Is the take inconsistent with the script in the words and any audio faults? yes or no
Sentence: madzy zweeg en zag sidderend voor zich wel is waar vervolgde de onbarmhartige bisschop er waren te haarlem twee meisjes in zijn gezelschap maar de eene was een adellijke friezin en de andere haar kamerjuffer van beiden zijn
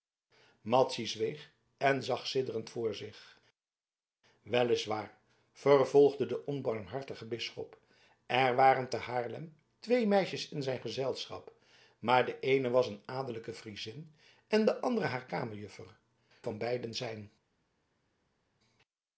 no